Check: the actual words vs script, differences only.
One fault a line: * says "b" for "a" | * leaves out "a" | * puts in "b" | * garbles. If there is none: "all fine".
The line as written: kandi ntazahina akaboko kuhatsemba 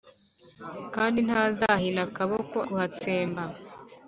all fine